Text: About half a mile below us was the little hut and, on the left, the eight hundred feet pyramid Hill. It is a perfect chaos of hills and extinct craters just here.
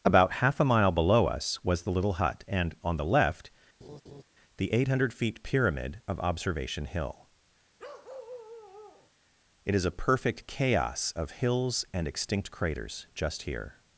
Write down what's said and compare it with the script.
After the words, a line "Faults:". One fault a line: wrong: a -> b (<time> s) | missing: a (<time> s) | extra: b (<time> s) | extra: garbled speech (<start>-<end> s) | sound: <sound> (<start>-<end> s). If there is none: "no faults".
About half a mile below us was the little hut and, on the left, the eight hundred feet pyramid of Observation Hill. It is a perfect chaos of hills and extinct craters just here.
Faults:
sound: laugh (3.8-4.2 s)
extra: of Observation (6.1 s)
sound: bark (7.8-9.1 s)